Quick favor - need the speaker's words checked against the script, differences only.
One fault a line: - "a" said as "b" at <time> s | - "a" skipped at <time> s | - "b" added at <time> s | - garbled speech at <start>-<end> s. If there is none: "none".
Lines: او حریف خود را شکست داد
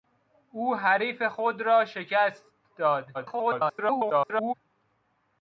- garbled speech at 3.1-4.5 s